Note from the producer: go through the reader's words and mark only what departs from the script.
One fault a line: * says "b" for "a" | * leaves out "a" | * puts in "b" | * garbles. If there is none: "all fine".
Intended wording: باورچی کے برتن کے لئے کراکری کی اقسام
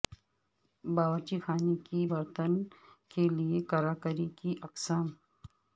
* puts in "خانے"